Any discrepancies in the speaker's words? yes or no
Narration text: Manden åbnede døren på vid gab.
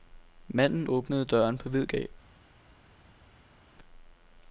no